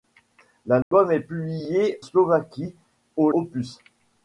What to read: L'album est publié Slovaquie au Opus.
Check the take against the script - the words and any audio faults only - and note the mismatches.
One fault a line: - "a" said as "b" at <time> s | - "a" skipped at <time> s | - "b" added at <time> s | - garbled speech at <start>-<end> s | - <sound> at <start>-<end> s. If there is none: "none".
- dropout at 0.8-0.9 s